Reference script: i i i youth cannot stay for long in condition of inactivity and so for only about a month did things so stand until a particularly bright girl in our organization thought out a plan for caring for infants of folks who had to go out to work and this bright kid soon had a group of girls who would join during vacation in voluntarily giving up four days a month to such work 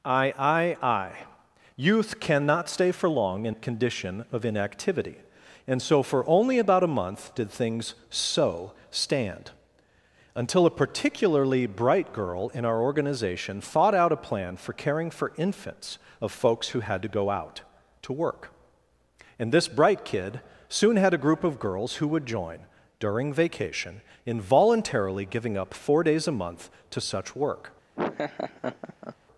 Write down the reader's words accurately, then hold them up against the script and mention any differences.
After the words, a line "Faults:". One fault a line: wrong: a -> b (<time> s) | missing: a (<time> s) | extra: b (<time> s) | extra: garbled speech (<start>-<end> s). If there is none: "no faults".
i i i youth cannot stay for long in condition of inactivity and so for only about a month did things so stand until a particularly bright girl in our organization thought out a plan for caring for infants of folks who had to go out to work and this bright kid soon had a group of girls who would join during vacation in voluntarily giving up four days a month to such work
Faults:
no faults